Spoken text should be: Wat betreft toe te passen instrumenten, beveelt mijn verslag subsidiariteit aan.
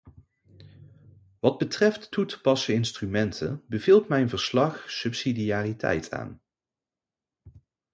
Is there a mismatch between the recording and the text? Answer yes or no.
no